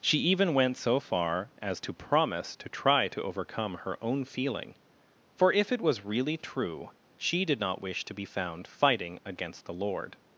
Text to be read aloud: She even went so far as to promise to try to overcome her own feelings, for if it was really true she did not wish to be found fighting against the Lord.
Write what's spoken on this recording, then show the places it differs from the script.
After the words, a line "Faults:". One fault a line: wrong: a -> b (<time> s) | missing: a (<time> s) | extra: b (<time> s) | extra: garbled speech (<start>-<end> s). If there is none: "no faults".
She even went so far as to promise to try to overcome her own feeling, for if it was really true she did not wish to be found fighting against the Lord.
Faults:
wrong: feelings -> feeling (4.2 s)